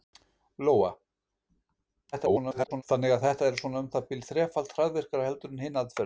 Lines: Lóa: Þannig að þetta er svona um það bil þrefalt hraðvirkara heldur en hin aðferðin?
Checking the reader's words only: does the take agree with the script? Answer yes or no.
no